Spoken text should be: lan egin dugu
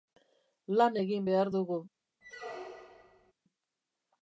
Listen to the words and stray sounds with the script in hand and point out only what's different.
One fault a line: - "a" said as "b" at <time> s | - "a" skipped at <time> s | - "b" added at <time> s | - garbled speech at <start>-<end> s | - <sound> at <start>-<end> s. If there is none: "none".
- "behar" added at 1.3 s
- squeak at 2.2-3.3 s